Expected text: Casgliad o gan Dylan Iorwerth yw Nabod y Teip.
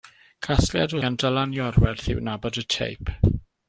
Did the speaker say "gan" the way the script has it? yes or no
yes